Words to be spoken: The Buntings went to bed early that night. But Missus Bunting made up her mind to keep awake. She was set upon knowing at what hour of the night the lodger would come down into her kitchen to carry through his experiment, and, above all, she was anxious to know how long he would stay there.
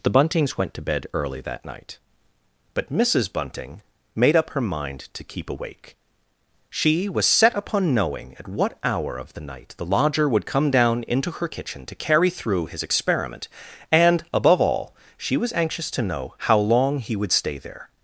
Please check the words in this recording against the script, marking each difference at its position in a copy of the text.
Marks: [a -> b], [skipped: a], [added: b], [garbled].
The Buntings went to bed early that night. But Missus Bunting made up her mind to keep awake. She was set upon knowing at what hour of the night the lodger would come down into her kitchen to carry through his experiment, and, above all, she was anxious to know how long he would stay there.